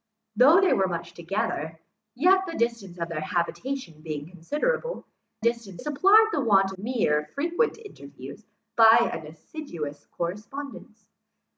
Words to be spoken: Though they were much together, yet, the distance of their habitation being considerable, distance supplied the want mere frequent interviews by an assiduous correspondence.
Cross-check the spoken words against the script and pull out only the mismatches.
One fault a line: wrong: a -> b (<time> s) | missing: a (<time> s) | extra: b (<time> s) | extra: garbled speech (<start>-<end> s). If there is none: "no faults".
no faults